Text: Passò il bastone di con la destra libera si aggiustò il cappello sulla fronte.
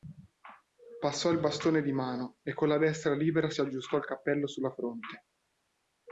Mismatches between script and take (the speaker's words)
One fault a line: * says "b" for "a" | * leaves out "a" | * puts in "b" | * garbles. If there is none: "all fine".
* puts in "mano e"